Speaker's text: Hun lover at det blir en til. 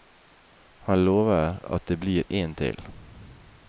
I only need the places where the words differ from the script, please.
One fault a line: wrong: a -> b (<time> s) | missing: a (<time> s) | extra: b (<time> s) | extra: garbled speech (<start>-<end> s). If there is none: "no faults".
wrong: Hun -> Han (0.8 s)